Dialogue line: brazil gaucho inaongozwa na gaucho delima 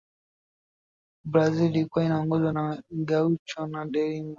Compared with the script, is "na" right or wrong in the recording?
right